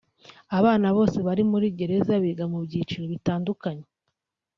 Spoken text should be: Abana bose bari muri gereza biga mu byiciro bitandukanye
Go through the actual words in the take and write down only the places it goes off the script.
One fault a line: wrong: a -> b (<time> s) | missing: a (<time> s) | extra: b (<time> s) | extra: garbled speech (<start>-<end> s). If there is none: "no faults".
no faults